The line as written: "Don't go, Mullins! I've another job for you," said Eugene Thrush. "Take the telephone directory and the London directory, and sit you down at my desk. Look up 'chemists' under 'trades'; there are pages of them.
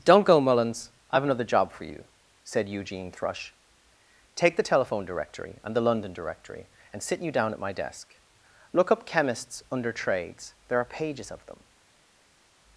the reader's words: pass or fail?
pass